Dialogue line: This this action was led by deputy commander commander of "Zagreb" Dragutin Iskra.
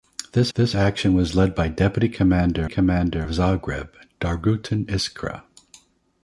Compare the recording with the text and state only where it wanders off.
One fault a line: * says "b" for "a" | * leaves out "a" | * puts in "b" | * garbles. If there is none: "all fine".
all fine